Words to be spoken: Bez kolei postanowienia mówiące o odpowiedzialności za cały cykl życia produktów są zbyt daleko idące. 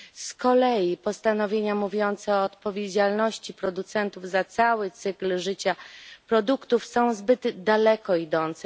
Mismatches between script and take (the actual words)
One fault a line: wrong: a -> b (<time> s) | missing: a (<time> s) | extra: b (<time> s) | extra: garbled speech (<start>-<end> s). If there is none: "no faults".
wrong: Bez -> Z (0.1 s)
extra: producentów (3.5 s)